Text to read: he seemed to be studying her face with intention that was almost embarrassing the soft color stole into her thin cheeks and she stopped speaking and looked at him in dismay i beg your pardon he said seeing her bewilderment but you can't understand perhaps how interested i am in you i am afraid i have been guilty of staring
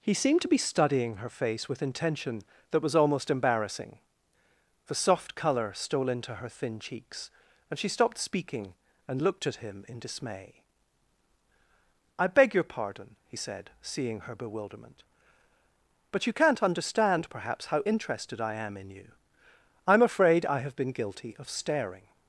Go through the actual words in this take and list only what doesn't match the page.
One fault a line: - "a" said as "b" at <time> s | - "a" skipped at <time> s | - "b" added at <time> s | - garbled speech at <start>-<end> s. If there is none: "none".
none